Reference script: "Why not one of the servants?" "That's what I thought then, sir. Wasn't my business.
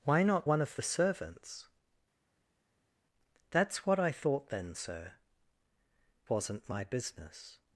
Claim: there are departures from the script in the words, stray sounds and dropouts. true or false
false